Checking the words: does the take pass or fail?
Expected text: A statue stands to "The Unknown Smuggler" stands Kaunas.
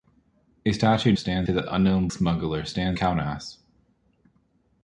pass